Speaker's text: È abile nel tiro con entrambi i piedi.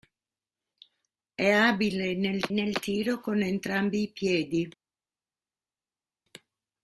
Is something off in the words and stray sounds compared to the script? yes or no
yes